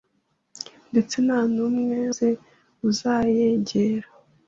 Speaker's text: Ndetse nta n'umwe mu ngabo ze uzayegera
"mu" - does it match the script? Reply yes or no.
no